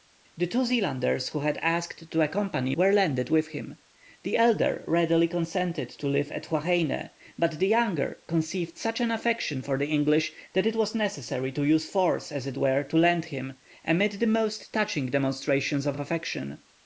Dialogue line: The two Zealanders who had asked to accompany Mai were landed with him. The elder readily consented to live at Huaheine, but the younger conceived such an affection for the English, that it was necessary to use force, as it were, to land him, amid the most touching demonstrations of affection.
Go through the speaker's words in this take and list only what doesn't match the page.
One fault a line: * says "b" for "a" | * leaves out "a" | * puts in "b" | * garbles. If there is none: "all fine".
* leaves out "Mai"
* puts in "of"